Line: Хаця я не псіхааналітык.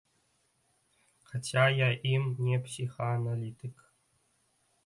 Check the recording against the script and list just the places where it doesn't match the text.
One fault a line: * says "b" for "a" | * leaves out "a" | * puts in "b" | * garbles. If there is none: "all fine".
* puts in "ім"